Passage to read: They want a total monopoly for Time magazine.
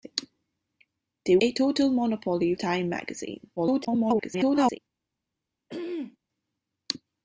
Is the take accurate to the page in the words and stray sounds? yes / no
no